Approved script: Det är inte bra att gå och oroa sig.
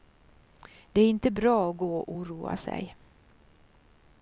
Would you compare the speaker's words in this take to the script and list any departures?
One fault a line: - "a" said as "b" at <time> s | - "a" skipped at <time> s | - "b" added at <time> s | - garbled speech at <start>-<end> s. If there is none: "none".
none